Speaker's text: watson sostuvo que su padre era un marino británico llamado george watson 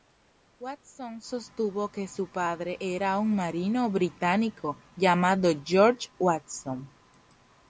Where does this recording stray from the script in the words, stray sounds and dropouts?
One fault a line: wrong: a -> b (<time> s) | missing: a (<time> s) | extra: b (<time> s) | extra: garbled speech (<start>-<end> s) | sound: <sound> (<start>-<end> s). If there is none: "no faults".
no faults